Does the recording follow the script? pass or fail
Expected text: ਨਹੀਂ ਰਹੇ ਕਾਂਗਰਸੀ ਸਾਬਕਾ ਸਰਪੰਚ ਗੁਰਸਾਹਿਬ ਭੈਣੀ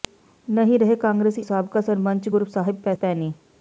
pass